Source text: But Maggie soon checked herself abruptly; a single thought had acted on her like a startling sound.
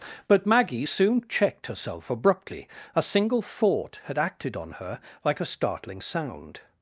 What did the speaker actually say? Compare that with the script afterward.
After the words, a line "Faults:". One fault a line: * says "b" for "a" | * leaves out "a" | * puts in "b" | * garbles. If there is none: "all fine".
But Maggie soon checked herself abruptly; a single thought had acted on her like a startling sound.
Faults:
all fine